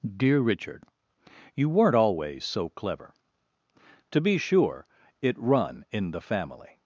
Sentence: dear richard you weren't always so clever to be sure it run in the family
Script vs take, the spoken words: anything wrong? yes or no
no